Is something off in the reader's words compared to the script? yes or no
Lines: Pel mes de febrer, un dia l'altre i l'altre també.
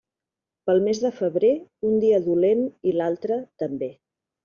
yes